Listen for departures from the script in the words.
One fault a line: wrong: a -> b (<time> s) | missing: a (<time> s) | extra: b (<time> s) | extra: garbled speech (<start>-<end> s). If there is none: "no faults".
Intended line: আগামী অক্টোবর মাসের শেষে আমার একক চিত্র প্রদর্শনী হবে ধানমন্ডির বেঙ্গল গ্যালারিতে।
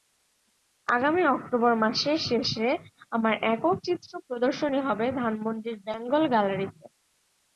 no faults